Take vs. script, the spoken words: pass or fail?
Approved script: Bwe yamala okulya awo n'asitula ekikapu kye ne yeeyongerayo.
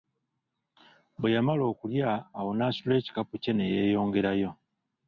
pass